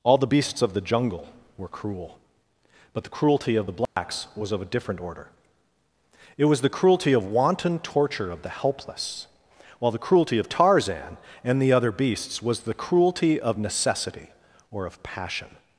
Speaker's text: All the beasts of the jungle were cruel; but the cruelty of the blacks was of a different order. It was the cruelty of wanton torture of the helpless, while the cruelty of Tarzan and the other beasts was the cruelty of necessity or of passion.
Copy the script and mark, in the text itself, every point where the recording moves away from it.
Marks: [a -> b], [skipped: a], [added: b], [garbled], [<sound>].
All the beasts of the jungle were cruel; but the cruelty of the blacks [dropout] was of a different order. It was the cruelty of wanton torture of the helpless, while the cruelty of Tarzan and the other beasts was the cruelty of necessity or of passion.